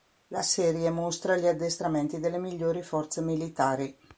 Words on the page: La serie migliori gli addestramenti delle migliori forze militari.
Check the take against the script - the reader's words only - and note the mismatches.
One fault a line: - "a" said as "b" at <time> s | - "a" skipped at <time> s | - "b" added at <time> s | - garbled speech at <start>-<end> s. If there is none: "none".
- "migliori" said as "mostra" at 0.9 s